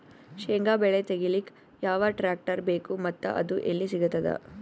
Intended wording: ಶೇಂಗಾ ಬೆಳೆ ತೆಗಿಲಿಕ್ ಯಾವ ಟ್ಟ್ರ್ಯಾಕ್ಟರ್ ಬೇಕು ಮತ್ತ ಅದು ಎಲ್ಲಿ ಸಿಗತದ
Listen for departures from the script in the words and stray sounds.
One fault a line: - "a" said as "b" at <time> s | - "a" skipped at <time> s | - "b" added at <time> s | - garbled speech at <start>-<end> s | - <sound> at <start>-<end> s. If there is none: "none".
none